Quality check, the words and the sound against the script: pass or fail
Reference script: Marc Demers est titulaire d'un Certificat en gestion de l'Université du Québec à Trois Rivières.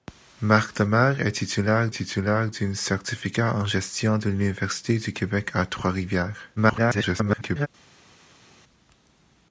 fail